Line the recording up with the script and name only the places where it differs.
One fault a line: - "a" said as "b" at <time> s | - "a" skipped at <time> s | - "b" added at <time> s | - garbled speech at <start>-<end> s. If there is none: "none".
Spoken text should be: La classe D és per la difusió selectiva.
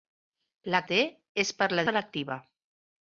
- "classe" skipped at 0.8 s
- "difusió" skipped at 1.9 s